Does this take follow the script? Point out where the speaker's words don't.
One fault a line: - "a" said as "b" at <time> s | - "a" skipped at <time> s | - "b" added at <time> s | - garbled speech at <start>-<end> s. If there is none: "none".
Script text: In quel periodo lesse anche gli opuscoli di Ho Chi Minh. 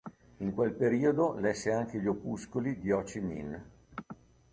none